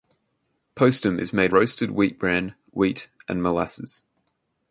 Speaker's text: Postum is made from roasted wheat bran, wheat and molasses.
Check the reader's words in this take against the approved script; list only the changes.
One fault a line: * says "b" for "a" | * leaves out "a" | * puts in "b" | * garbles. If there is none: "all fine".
* leaves out "from"